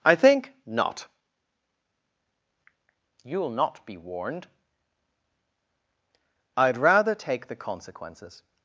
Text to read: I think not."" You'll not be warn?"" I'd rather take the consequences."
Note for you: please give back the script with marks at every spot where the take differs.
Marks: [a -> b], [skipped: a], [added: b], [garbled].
I think not."" You'll not be [warn?"" -> warned] I'd rather take the consequences."